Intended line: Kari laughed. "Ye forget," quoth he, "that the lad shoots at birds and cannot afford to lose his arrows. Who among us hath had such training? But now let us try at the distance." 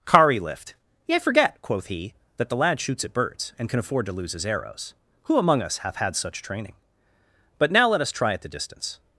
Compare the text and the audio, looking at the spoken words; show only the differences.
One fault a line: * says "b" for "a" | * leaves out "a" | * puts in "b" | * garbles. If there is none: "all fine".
* says "lift" for "laughed"
* says "can" for "cannot"